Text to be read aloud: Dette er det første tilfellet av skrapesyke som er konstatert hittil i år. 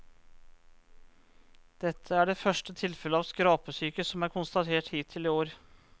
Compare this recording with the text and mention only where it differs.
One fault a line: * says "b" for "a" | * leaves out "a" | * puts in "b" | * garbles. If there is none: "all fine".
all fine